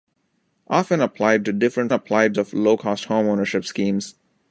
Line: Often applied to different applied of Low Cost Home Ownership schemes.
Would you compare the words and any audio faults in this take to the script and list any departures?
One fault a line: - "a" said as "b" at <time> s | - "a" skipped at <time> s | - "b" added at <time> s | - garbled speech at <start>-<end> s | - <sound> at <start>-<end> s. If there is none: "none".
none